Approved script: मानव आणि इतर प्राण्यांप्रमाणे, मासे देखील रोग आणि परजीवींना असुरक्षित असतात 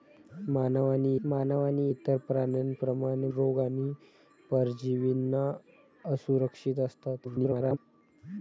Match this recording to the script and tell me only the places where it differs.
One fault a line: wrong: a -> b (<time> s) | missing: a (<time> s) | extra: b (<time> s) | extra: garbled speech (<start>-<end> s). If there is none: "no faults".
extra: मानव आणि (1.3 s)
missing: मासे देखील (3.3 s)
extra: garbled speech (7.2-7.8 s)